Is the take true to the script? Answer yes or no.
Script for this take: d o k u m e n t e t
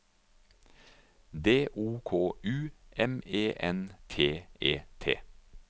yes